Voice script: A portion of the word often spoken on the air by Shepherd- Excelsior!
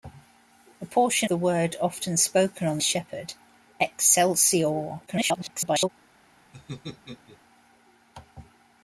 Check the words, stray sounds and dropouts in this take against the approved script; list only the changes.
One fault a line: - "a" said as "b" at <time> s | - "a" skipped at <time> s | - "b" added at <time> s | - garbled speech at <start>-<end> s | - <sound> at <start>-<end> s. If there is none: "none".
- "of" skipped at 1.3 s
- "the air by" skipped at 2.8 s
- garbled speech at 5.1-5.9 s
- laugh at 6.5-7.4 s